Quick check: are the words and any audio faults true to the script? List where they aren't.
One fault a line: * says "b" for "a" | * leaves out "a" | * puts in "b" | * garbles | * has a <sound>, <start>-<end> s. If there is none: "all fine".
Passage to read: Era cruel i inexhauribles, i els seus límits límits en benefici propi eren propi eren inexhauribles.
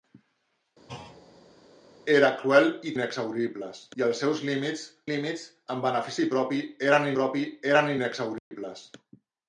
* has a thud, 0.9-1.6 s
* has a dropout, 8.4-8.5 s